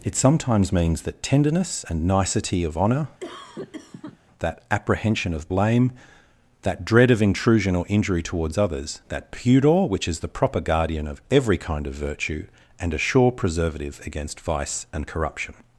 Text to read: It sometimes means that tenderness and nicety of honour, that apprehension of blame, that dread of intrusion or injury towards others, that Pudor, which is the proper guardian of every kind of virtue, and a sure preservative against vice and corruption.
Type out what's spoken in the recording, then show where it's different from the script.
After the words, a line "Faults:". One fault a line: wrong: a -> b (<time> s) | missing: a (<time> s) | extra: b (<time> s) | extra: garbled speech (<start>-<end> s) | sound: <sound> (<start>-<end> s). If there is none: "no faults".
It sometimes means that tenderness and nicety of honour, that apprehension of blame, that dread of intrusion or injury towards others, that Pudor, which is the proper guardian of every kind of virtue, and a sure preservative against vice and corruption.
Faults:
sound: cough (3.2-4.2 s)